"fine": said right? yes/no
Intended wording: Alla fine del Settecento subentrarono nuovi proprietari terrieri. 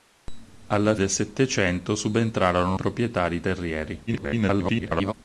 no